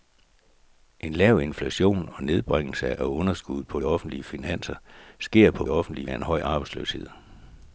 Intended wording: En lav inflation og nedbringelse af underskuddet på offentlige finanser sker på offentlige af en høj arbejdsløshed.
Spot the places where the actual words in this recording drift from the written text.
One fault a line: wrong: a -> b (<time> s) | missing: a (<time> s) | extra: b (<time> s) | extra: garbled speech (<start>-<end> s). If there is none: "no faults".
no faults